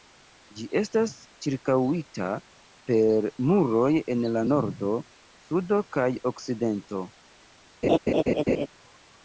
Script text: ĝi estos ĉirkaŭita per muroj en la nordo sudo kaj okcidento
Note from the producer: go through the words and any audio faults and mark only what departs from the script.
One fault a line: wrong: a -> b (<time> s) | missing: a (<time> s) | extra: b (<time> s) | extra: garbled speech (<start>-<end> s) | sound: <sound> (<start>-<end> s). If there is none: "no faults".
wrong: estos -> estas (0.8 s)
sound: laugh (7.8-8.7 s)